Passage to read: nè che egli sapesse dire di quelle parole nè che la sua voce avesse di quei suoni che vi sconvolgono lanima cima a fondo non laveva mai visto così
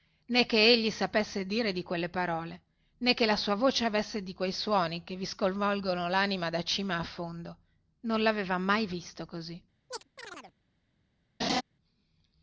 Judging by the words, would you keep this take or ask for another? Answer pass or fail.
fail